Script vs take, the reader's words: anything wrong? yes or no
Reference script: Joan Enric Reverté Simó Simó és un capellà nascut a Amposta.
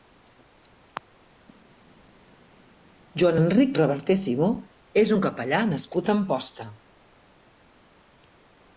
yes